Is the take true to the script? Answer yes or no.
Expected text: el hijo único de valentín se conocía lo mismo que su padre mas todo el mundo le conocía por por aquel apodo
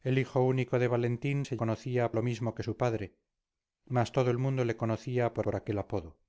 yes